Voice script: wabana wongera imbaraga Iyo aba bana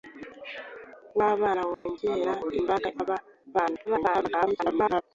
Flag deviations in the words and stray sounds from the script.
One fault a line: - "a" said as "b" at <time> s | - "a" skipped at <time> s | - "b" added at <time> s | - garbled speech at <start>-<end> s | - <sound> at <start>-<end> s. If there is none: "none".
- dropout at 1.7-1.9 s
- "Iyo" skipped at 2.9 s
- garbled speech at 3.8-5.0 s